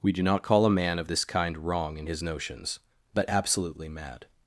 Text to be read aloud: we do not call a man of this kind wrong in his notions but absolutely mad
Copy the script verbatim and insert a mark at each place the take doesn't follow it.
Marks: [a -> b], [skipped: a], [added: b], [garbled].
we do not call a man of this kind wrong in his notions but absolutely mad